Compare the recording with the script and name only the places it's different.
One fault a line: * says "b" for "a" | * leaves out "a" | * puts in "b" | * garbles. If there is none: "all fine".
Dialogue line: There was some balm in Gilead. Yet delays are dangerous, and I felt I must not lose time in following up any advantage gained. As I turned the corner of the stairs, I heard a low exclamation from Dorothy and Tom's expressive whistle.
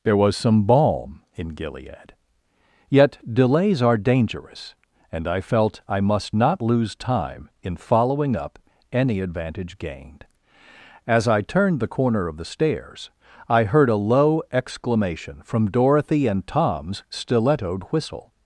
* says "stilettoed" for "expressive"